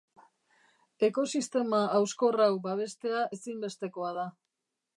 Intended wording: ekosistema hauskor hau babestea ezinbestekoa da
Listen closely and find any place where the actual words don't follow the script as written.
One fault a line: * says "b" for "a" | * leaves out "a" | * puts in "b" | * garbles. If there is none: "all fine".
all fine